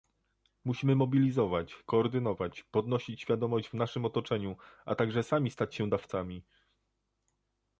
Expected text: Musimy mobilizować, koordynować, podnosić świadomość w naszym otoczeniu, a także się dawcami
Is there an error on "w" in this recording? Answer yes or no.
no